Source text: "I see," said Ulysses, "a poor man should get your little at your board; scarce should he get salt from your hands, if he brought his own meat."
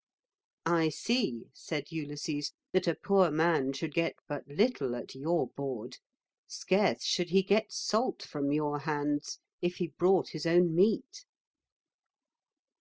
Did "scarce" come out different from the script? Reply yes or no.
no